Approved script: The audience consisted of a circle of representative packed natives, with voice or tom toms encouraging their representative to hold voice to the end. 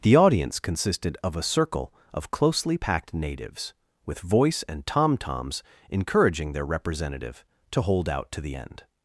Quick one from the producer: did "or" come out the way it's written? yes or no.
no